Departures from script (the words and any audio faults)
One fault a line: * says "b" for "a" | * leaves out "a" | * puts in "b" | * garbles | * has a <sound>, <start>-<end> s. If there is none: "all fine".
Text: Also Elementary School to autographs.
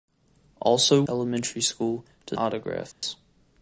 * has a dropout, 2.9-3.0 s